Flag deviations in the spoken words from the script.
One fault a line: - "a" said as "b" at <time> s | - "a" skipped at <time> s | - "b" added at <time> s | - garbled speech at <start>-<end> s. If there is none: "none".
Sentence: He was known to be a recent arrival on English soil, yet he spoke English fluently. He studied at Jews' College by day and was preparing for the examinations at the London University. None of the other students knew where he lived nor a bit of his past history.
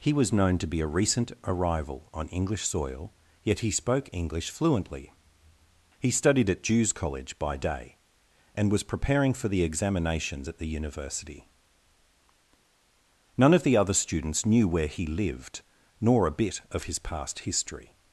- "London" skipped at 10.7 s